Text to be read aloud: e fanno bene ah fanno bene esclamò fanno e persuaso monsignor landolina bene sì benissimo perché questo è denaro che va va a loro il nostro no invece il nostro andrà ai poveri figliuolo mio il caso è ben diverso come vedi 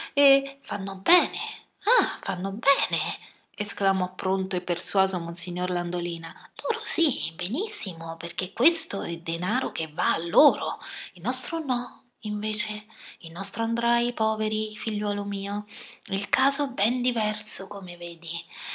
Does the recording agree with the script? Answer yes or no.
no